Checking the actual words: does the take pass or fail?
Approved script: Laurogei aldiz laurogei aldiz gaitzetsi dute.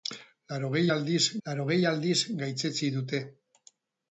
pass